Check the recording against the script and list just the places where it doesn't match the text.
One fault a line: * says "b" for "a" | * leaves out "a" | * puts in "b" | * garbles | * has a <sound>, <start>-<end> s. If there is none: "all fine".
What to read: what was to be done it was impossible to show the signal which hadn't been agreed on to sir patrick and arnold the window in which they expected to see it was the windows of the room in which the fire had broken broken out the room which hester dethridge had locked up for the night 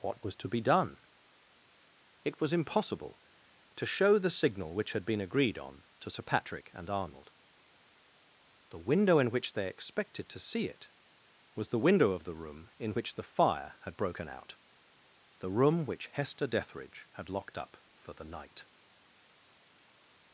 * says "had" for "hadn't"
* says "window" for "windows"
* leaves out "broken"